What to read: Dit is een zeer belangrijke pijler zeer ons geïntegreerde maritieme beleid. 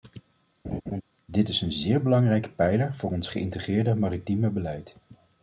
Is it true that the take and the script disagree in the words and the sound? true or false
true